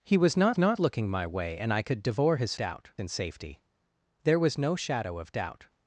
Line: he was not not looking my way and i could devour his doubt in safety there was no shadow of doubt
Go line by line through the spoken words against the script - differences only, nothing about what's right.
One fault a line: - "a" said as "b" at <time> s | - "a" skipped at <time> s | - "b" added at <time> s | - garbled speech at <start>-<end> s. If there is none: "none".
none